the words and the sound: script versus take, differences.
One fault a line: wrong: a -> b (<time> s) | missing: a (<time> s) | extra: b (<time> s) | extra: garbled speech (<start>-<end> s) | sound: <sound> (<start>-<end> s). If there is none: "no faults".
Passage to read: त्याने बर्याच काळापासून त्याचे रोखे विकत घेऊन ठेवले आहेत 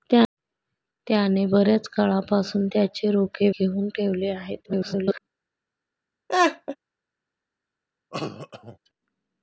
missing: विकत (3.5 s)
extra: garbled speech (4.6-5.2 s)
sound: laugh (6.3-6.8 s)
sound: cough (8.1-8.8 s)